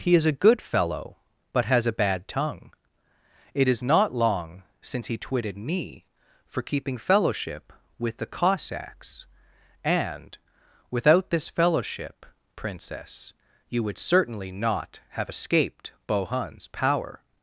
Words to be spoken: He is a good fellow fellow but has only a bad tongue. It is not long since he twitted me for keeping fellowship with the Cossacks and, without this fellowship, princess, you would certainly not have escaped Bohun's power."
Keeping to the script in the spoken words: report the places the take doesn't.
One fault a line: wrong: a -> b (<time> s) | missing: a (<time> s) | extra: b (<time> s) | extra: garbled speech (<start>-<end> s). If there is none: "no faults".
missing: fellow (1.2 s)
missing: only (1.8 s)